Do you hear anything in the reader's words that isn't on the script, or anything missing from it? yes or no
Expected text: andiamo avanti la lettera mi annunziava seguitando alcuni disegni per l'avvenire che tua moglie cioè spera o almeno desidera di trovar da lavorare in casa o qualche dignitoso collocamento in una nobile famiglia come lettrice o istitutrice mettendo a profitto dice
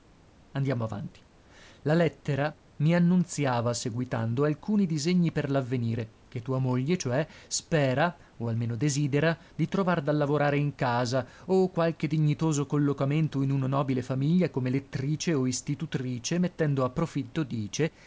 no